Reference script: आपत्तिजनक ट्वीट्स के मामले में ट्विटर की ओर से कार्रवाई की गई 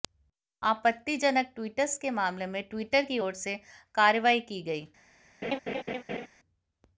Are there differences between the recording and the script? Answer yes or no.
no